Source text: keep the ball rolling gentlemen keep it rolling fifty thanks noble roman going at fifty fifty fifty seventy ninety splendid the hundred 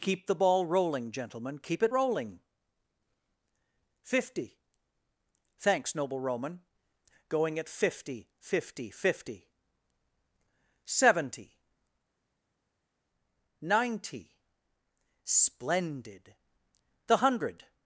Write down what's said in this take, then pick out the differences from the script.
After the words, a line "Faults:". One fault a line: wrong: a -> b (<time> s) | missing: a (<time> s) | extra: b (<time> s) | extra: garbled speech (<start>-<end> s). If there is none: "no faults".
keep the ball rolling gentlemen keep it rolling fifty thanks noble roman going at fifty fifty fifty seventy ninety splendid the hundred
Faults:
no faults